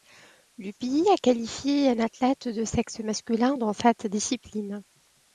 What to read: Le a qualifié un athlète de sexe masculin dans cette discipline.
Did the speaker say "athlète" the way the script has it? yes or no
yes